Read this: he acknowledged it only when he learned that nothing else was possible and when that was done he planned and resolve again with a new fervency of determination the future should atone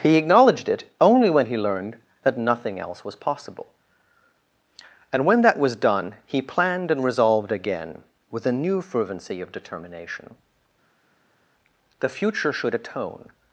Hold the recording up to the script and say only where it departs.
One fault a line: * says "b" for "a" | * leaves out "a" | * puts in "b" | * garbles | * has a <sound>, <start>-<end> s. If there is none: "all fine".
* says "resolved" for "resolve"